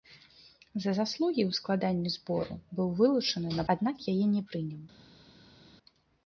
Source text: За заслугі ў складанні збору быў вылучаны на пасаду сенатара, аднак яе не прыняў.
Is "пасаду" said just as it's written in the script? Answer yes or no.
no